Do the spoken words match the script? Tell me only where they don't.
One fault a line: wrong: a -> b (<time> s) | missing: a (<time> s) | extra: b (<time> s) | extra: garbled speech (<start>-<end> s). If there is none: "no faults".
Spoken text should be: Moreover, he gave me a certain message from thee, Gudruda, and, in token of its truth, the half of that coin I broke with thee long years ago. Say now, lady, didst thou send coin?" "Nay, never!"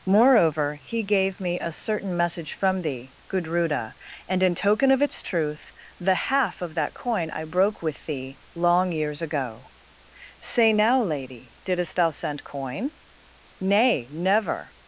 no faults